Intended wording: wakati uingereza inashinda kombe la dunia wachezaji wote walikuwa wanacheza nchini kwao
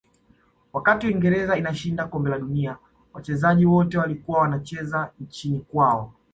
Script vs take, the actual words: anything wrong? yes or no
no